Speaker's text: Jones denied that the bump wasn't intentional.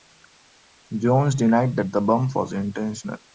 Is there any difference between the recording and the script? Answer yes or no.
yes